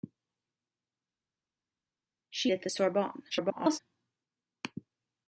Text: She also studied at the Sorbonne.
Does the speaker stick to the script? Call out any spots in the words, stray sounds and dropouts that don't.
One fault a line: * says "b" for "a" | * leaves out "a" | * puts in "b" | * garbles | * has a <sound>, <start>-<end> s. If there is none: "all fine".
* leaves out "also studied"
* garbles